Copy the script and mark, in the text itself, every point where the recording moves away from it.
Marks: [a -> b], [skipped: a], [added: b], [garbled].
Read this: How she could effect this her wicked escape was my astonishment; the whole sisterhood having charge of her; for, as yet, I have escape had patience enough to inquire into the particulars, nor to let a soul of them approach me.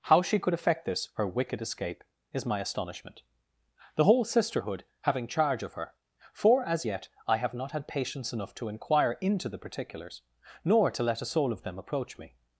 How she could effect this her wicked escape [was -> is] my astonishment; the whole sisterhood having charge of her; for, as yet, I have [escape -> not] had patience enough to inquire into the particulars, nor to let a soul of them approach me.